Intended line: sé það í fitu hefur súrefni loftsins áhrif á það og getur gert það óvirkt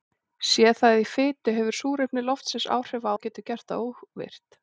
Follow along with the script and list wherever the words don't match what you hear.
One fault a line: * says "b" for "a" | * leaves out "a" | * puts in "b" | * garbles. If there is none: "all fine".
* leaves out "það"